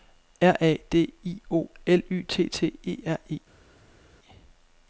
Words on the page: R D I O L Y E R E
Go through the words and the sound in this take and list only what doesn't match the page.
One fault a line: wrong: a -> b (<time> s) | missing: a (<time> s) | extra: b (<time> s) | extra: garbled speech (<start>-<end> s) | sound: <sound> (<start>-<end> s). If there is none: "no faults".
extra: A (0.6 s)
extra: T T (2.3 s)